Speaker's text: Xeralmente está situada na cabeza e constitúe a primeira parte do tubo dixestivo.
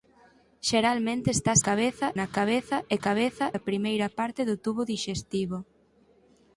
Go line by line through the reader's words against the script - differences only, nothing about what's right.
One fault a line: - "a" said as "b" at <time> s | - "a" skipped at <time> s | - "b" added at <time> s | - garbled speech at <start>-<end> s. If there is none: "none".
- "situada" said as "cabeza" at 1.7 s
- "constitúe" said as "cabeza" at 3.1 s